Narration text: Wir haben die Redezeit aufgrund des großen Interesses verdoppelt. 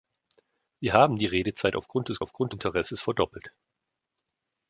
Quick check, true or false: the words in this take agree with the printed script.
false